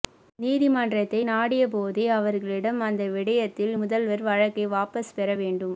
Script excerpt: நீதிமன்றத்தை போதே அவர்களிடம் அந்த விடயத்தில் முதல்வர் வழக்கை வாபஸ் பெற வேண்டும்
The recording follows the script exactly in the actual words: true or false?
false